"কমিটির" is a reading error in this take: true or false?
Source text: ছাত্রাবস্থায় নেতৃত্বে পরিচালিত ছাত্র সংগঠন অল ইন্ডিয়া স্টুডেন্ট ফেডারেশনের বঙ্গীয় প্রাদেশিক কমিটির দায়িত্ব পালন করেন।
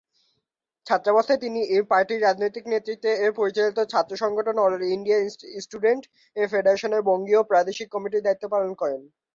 false